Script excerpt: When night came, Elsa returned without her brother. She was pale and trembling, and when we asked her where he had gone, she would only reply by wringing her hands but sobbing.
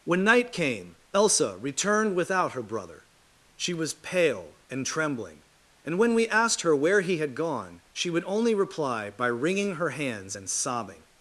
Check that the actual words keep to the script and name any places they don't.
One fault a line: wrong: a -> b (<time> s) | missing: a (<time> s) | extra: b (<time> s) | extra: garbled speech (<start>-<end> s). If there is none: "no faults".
wrong: but -> and (10.3 s)